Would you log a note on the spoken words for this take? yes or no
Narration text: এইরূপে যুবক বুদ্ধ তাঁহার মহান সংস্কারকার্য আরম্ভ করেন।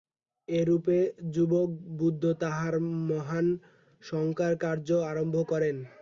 no